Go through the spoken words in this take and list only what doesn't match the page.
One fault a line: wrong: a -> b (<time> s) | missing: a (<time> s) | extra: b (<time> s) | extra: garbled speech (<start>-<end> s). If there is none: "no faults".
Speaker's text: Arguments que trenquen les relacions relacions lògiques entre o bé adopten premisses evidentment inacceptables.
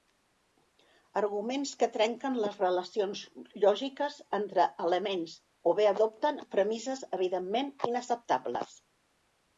missing: relacions (3.2 s)
extra: elements (4.9 s)